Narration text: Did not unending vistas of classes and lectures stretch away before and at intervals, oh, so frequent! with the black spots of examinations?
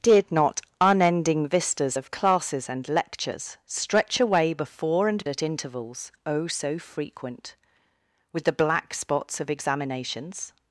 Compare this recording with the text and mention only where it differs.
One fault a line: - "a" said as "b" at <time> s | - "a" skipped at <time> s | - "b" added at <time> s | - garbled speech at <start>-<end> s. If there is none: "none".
none